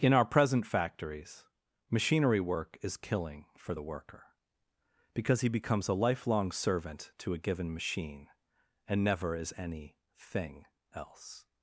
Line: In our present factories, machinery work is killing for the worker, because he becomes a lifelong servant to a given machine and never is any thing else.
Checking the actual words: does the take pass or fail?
pass